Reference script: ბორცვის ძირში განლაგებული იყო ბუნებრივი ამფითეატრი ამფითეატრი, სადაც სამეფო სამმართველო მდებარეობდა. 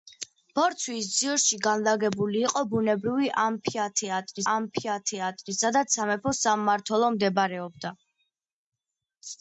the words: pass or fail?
pass